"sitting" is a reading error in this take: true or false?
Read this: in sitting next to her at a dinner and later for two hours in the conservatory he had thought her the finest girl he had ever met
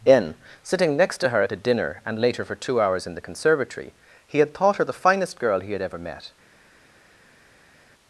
false